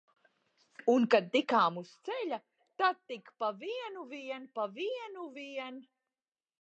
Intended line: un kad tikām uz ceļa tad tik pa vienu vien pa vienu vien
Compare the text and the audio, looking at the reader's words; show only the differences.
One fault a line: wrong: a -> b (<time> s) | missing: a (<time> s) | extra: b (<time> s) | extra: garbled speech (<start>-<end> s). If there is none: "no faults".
no faults